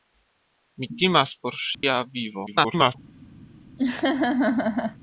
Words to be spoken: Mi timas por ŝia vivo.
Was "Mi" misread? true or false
false